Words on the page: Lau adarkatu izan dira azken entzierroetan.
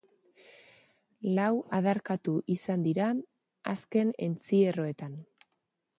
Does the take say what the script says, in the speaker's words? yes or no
yes